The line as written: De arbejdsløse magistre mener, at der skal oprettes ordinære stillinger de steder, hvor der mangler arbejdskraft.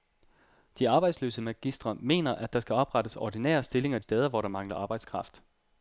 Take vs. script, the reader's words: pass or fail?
fail